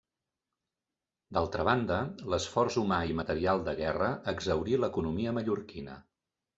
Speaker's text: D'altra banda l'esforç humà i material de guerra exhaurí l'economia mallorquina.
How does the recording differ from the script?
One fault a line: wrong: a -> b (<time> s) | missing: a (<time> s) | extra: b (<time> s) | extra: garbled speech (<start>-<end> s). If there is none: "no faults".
no faults